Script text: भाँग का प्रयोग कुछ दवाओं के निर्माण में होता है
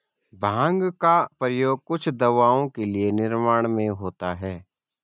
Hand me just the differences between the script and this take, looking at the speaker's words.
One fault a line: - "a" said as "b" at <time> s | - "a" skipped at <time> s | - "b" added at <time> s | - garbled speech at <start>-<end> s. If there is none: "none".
none